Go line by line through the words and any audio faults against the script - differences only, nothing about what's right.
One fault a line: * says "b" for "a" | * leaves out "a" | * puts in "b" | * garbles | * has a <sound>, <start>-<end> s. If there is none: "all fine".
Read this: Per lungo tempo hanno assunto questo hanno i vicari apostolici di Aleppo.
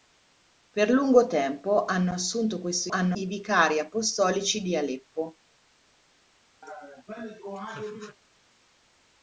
* has a laugh, 6.6-8.2 s